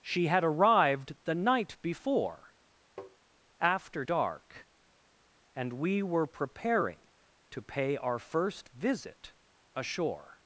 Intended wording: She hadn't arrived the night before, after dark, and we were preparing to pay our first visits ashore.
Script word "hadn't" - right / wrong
wrong